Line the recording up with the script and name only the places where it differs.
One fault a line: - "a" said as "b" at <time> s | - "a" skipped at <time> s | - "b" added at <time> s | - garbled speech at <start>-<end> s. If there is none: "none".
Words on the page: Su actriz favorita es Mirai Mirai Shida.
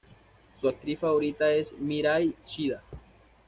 - "Mirai" skipped at 2.3 s